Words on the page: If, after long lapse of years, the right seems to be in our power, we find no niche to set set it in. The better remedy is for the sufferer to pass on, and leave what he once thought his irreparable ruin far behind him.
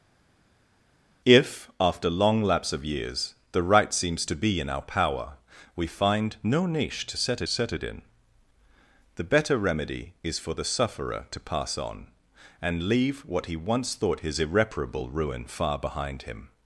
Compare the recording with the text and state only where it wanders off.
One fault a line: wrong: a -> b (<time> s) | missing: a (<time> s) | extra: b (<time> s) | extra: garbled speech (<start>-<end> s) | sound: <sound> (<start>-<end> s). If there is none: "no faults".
no faults